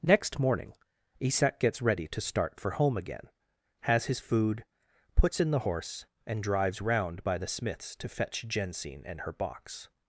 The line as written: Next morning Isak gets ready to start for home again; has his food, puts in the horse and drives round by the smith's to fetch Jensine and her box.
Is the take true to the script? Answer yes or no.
yes